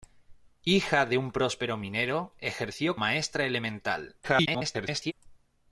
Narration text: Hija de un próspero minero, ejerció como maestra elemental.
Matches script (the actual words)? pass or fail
fail